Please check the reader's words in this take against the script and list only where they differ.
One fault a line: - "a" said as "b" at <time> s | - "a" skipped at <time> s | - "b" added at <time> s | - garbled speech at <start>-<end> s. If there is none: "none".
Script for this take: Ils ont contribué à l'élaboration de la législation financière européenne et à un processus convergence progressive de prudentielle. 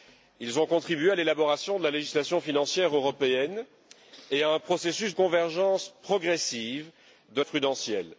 none